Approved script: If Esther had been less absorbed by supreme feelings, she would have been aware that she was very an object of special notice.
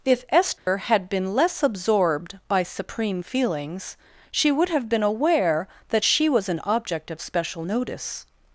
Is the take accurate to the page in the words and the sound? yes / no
no